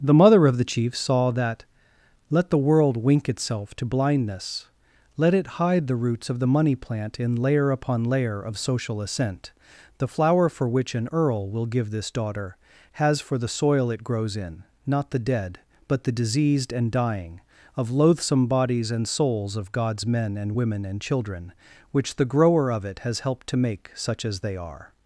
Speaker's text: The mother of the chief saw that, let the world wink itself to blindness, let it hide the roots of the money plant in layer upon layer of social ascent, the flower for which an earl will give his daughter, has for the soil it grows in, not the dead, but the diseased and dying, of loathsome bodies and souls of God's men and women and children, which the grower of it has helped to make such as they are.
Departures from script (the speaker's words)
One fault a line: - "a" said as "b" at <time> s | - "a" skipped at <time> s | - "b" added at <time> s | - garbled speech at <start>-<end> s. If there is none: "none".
- "his" said as "this" at 11.9 s